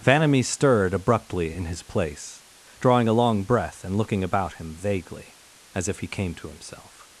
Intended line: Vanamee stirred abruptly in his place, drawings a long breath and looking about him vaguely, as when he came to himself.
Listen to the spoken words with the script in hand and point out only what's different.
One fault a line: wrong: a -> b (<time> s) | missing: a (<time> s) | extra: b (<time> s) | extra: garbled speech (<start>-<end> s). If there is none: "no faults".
wrong: drawings -> drawing (2.8 s)
wrong: when -> if (5.9 s)